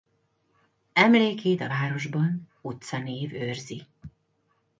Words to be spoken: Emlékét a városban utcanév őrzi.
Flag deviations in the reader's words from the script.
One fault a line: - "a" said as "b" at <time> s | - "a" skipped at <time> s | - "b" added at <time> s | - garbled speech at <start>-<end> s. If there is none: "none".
none